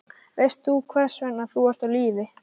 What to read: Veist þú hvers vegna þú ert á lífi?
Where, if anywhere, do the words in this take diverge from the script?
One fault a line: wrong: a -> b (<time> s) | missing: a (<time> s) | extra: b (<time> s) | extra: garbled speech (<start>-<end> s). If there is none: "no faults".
no faults